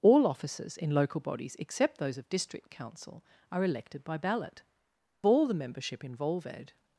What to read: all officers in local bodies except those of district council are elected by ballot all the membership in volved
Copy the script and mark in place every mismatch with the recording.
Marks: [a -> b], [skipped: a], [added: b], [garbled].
all officers in local bodies except those of district council are elected by ballot all the membership in volved